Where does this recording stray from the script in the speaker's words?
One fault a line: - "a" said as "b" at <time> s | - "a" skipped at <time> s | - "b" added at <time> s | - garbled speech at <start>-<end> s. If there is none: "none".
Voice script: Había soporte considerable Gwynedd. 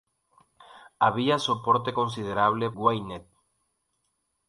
none